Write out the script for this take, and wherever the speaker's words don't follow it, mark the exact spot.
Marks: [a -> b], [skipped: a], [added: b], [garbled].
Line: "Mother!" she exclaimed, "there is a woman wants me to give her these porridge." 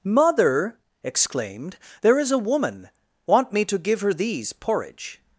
"Mother!" [skipped: she] exclaimed, "there is a woman [wants -> want] me to give her these porridge."